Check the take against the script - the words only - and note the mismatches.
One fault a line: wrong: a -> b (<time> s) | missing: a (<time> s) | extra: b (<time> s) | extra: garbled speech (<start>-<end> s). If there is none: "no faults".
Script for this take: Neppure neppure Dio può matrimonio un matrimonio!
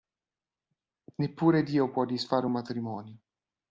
missing: neppure (1.6 s)
wrong: matrimonio -> disfare (2.0 s)